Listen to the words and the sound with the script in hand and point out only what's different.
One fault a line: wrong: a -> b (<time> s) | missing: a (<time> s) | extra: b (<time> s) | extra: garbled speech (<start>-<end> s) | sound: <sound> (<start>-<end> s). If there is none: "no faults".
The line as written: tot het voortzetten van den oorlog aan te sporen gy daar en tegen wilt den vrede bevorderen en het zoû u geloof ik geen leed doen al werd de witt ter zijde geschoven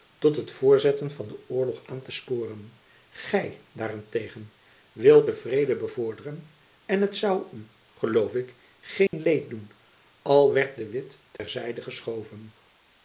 sound: dropout (9.1-9.1 s)
sound: dropout (11.4-11.4 s)